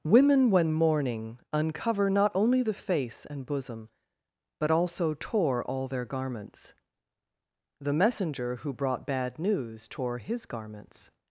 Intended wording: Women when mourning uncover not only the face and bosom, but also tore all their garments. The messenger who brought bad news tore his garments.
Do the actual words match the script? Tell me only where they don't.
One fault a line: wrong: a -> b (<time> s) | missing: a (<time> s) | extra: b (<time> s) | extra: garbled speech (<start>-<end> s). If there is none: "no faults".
no faults